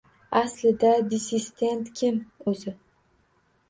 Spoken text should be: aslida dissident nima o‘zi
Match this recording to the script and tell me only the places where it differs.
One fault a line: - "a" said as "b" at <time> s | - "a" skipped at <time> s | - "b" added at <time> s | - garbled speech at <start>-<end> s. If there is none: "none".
- "nima" said as "kim" at 2.0 s